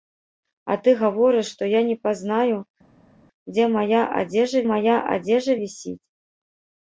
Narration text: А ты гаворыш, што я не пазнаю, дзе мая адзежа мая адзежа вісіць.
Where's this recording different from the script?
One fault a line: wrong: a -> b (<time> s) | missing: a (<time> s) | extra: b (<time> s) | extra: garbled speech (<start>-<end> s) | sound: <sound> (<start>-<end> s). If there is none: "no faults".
no faults